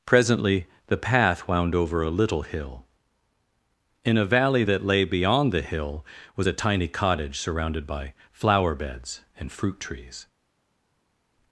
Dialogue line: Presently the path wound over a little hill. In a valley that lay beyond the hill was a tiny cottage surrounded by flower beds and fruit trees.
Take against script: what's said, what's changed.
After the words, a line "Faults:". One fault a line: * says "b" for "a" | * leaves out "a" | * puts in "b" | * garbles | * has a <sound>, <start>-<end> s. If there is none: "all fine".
Presently the path wound over a little hill. In a valley that lay beyond the hill was a tiny cottage surrounded by flower beds and fruit trees.
Faults:
all fine